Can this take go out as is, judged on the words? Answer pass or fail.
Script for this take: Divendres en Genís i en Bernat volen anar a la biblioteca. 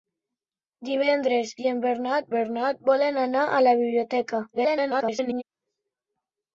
fail